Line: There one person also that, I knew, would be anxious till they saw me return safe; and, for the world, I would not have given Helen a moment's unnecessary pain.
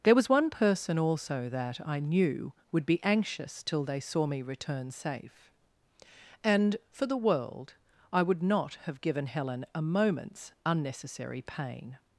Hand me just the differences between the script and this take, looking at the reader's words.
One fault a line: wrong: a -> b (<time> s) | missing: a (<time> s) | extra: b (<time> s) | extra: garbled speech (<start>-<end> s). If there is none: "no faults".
extra: was (0.1 s)